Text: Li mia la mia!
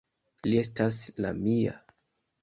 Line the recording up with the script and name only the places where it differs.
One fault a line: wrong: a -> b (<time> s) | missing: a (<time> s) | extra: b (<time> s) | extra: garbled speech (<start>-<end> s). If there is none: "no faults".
wrong: mia -> estas (0.6 s)